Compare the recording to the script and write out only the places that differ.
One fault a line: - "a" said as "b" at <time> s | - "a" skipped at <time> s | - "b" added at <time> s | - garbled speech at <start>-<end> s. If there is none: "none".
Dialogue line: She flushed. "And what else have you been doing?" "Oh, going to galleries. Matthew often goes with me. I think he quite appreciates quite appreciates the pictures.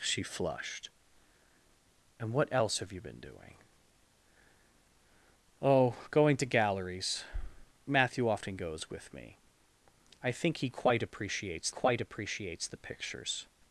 none